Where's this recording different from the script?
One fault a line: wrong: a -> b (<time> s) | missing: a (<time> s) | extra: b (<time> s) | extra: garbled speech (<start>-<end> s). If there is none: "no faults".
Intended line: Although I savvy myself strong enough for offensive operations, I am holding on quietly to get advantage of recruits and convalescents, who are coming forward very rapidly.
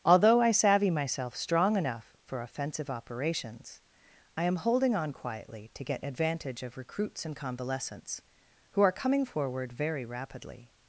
no faults